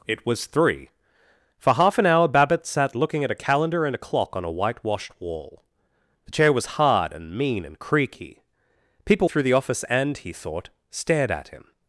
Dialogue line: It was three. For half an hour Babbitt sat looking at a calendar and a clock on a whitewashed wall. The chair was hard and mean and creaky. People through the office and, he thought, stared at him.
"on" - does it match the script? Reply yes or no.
yes